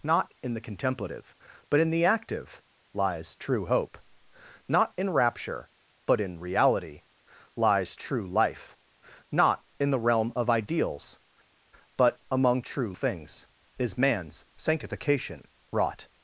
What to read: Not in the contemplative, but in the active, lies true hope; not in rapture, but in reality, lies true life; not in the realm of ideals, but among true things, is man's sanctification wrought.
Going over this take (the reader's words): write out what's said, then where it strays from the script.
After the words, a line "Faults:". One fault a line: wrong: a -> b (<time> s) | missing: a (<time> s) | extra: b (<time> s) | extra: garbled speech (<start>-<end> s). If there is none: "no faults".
Not in the contemplative, but in the active, lies true hope; not in rapture, but in reality, lies true life; not in the realm of ideals, but among true things, is man's sanctification wrought.
Faults:
no faults